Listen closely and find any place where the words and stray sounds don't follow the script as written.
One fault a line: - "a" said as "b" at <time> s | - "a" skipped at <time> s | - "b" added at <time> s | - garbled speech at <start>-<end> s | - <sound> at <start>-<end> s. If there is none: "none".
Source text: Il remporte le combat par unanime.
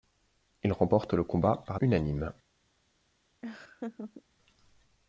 - laugh at 3.4-4.2 s